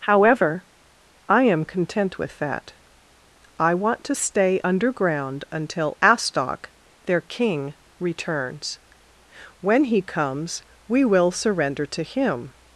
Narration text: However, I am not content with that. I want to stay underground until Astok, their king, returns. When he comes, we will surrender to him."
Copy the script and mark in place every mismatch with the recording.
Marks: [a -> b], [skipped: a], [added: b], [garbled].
However, I am [skipped: not] content with that. I want to stay underground until Astok, their king, returns. When he comes, we will surrender to him."